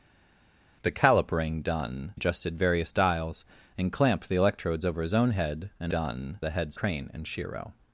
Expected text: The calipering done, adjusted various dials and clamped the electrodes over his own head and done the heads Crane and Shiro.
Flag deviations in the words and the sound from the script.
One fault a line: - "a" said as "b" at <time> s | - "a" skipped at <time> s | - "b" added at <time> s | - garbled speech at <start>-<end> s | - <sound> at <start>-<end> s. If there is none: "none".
none